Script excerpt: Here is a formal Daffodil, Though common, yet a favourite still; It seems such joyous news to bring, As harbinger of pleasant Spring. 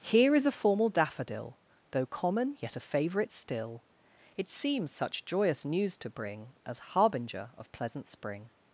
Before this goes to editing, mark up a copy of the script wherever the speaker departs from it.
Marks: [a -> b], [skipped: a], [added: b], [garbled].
Here is a formal Daffodil, Though common, yet a favourite still; It seems such joyous news to bring, As harbinger of pleasant Spring.